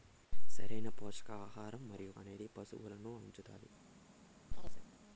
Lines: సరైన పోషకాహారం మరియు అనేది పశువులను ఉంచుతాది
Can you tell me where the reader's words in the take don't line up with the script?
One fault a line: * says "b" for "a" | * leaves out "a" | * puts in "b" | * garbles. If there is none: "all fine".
all fine